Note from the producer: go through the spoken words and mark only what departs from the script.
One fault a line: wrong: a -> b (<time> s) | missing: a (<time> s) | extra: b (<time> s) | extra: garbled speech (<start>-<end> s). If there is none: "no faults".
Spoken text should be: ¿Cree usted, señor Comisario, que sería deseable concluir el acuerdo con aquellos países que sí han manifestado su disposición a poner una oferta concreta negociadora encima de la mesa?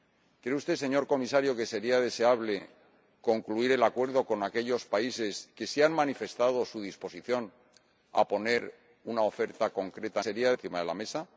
wrong: negociadora -> sería (10.2 s)